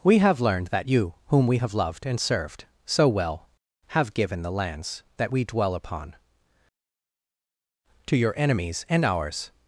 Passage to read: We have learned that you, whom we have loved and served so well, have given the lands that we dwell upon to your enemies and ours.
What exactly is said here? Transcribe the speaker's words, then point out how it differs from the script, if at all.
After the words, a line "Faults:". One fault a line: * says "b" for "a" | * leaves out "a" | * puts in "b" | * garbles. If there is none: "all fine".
We have learned that you, whom we have loved and served so well, have given the lands that we dwell upon to your enemies and ours.
Faults:
all fine